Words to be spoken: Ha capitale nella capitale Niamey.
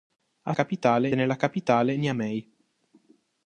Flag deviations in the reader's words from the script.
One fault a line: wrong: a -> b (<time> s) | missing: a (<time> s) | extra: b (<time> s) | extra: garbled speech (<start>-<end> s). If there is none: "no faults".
no faults